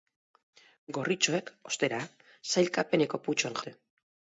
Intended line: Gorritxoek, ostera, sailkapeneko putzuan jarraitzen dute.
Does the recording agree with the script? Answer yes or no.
no